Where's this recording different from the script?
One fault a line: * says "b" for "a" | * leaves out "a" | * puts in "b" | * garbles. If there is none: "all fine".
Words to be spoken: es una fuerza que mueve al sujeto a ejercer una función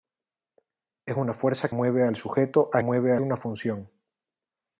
* leaves out "que"
* says "mueve" for "ejercer"